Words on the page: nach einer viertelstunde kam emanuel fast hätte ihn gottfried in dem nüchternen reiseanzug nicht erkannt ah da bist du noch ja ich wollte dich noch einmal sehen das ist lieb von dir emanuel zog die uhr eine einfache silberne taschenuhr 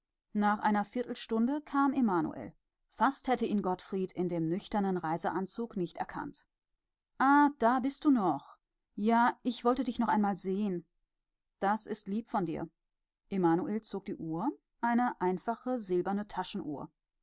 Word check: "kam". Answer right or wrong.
right